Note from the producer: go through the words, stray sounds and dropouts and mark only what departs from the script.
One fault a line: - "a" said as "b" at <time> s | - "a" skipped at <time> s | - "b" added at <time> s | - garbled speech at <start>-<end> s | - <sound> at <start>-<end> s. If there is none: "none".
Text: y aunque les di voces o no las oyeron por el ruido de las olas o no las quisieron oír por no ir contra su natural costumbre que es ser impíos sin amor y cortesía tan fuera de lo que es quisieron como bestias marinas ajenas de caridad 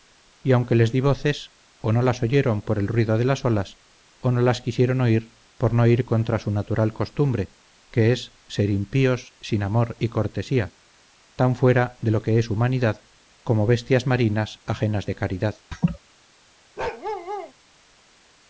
- "quisieron" said as "humanidad" at 12.5 s
- laugh at 15.7-16.0 s
- bark at 16.8-17.5 s